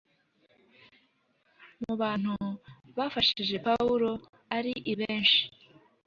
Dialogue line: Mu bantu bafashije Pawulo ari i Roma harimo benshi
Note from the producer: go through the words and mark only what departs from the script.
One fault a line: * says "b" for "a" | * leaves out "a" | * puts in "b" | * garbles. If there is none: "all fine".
* leaves out "Roma harimo"